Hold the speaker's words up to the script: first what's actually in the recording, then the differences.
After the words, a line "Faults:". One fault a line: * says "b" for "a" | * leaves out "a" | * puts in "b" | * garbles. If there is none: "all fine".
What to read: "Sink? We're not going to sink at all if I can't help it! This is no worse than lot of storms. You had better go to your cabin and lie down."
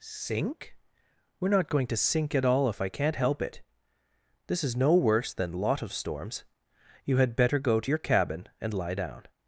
"Sink? We're not going to sink at all if I can't help it! This is no worse than lot of storms. You had better go to your cabin and lie down."
Faults:
all fine